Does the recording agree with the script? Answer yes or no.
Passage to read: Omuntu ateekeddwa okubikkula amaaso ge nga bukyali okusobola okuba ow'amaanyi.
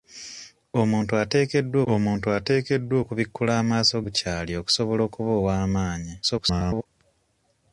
no